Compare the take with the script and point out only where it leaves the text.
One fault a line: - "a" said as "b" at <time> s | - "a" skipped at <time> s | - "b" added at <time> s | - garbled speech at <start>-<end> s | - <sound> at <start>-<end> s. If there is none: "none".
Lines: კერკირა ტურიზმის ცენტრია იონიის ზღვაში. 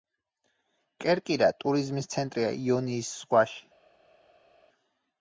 none